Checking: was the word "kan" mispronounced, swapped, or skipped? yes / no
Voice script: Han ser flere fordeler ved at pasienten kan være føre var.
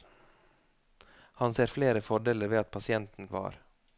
yes